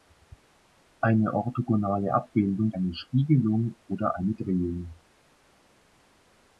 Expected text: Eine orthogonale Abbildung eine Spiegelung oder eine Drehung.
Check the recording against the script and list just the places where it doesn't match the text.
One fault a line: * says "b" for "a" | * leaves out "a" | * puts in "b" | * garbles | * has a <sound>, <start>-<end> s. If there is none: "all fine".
all fine